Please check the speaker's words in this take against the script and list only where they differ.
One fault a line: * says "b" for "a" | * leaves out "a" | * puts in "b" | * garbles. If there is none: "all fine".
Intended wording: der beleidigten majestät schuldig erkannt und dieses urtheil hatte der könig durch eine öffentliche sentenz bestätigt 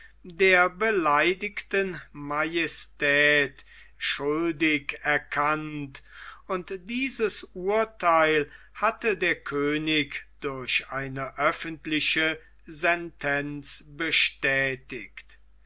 all fine